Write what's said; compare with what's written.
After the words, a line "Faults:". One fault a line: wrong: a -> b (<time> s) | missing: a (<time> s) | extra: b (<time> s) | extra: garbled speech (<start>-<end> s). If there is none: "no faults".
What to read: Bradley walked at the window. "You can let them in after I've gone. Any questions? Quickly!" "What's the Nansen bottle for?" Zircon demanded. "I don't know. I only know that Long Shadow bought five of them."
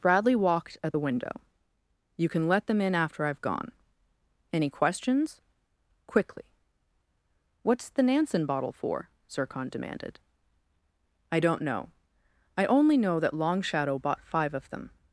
Bradley walked at the window. "You can let them in after I've gone. Any questions? Quickly!" "What's the Nansen bottle for?" Zircon demanded. "I don't know. I only know that Long Shadow bought five of them."
Faults:
no faults